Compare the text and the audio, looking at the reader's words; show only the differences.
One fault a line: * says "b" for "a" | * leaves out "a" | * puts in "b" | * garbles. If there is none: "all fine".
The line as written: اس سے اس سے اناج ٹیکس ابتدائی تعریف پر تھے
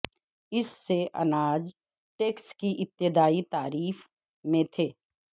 * leaves out "اس سے"
* puts in "کی"
* says "میں" for "پر"